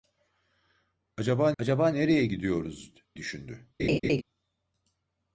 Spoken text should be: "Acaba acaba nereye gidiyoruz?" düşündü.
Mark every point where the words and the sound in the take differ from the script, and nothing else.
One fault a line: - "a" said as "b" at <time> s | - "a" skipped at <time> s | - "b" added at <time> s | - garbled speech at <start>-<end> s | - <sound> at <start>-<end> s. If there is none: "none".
- laugh at 3.8-4.2 s